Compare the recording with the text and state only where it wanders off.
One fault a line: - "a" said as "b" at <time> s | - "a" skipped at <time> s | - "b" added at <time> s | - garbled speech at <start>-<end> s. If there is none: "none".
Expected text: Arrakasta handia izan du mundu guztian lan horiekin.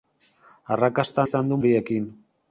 - "handia" skipped at 1.2 s
- "mundu guztian lan" skipped at 1.6 s